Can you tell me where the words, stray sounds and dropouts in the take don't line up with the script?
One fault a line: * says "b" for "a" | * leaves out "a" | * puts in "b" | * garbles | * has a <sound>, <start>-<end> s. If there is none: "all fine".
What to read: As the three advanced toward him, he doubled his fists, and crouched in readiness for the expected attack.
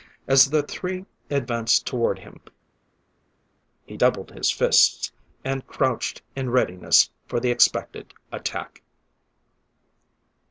all fine